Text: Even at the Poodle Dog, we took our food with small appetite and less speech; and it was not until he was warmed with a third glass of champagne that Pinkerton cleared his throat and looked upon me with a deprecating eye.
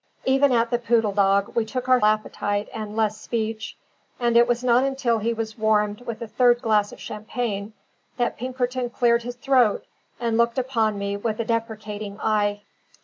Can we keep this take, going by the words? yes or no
no